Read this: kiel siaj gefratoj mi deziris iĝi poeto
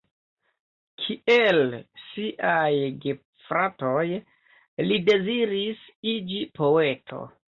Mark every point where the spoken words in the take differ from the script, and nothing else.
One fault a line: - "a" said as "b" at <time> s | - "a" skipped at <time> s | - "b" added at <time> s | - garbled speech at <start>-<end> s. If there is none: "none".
- "mi" said as "li" at 4.9 s